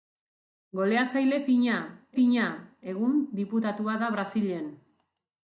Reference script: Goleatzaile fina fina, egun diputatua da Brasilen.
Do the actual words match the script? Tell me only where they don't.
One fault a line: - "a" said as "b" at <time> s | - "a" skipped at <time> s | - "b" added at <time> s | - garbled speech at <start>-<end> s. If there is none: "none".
none